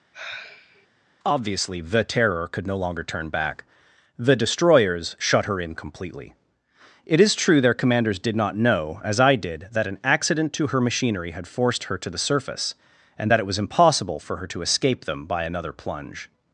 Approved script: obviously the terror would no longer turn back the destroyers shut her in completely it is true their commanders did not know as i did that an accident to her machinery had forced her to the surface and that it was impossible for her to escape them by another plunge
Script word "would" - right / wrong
wrong